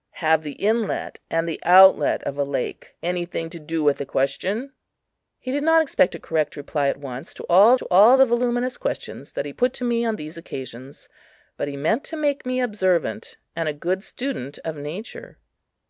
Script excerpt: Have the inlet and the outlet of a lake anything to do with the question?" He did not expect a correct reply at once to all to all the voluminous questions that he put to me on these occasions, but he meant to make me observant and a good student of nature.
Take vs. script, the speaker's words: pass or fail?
pass